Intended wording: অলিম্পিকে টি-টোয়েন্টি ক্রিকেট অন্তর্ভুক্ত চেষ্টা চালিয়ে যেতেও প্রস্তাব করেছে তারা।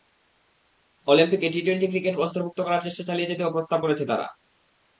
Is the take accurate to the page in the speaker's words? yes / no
no